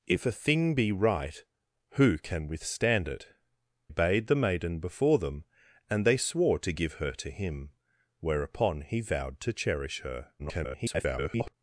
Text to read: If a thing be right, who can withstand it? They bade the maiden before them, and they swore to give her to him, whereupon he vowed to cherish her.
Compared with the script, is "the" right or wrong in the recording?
right